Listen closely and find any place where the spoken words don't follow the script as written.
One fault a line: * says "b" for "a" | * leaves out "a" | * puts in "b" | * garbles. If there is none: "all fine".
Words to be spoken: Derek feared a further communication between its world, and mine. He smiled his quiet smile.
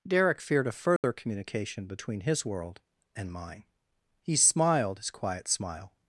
* says "his" for "its"